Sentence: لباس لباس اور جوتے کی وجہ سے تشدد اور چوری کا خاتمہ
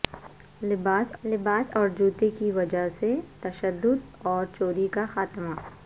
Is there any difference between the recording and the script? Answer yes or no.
no